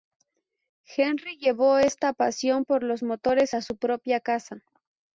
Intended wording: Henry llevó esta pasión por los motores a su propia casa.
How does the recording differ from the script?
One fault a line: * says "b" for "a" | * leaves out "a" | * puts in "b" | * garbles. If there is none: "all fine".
all fine